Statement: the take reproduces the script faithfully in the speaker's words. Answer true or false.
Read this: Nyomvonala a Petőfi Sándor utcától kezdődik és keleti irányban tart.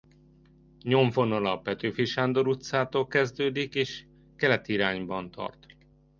true